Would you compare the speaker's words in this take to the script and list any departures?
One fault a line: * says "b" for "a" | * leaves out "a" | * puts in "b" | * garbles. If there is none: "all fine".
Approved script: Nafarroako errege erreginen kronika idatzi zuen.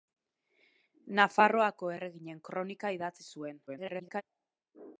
* leaves out "errege"
* garbles